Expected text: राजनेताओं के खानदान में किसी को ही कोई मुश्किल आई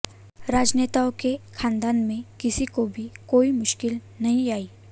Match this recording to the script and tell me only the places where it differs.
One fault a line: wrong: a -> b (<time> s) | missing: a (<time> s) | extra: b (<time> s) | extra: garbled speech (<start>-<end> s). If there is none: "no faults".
wrong: ही -> भी (2.9 s)
extra: नहीं (4.2 s)